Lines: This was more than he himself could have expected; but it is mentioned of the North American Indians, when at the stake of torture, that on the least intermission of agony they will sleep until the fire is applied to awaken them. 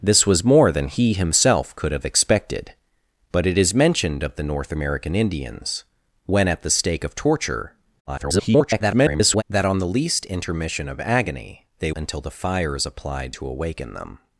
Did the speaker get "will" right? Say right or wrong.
wrong